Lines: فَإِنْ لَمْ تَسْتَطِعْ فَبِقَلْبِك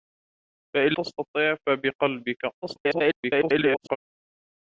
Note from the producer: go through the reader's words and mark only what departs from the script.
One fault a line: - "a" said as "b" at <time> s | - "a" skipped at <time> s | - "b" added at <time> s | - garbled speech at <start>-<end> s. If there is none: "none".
- "لَمْ" skipped at 1.0 s
- garbled speech at 2.6-4.0 s